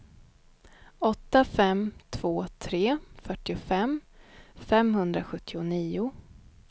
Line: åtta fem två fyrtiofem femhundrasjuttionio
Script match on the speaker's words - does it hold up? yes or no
no